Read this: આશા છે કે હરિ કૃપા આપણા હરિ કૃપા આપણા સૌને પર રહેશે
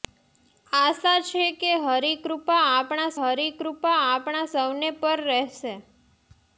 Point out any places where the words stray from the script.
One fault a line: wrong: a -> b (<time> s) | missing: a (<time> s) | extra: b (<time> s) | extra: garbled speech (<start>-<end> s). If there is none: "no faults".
no faults